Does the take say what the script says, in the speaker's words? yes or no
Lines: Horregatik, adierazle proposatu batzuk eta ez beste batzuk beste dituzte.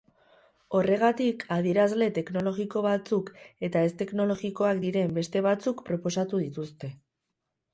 no